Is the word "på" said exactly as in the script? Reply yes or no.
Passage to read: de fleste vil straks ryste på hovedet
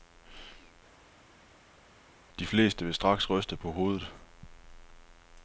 yes